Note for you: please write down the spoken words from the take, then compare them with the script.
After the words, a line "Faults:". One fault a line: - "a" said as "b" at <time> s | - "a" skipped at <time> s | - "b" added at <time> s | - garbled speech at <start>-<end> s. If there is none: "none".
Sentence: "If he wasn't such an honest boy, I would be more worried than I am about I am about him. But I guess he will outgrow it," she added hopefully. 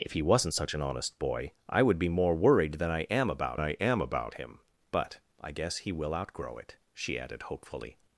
"If he wasn't such an honest boy, I would be more worried than I am about I am about him. But I guess he will outgrow it," she added hopefully.
Faults:
none